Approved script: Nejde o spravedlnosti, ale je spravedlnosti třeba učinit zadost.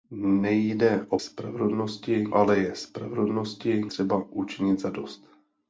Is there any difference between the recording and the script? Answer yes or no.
no